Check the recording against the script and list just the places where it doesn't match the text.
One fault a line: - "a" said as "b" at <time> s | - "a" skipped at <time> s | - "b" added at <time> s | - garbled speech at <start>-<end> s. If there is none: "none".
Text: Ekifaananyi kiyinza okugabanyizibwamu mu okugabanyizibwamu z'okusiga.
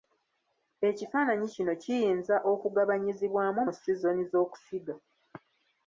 - "kino" added at 1.5 s
- "okugabanyizibwamu" said as "sizoni" at 3.8 s